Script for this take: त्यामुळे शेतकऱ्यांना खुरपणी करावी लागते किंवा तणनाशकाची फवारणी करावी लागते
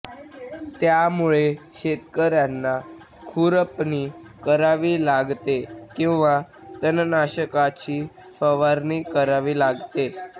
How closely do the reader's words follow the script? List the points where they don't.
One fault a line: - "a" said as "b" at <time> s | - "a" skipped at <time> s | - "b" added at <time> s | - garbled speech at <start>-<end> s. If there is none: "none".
none